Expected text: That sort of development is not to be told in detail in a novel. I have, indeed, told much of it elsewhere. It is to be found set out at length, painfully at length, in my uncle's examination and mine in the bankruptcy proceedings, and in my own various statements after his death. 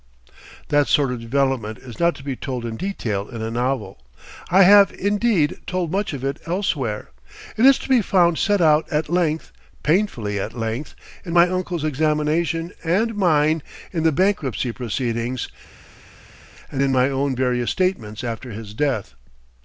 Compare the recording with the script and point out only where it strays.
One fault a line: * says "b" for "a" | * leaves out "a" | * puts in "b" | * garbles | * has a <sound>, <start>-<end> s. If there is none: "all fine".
all fine